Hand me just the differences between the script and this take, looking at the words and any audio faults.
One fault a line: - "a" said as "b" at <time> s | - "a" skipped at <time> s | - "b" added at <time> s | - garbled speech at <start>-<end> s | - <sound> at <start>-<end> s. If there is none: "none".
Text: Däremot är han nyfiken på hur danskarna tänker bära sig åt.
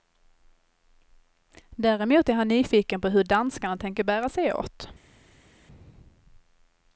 none